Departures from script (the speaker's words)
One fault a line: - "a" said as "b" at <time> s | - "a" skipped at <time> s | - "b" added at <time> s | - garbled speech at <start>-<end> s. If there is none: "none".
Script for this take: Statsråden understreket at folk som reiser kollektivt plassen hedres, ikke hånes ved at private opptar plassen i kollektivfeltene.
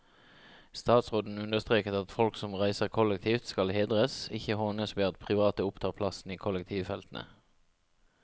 - "plassen" said as "skal" at 3.5 s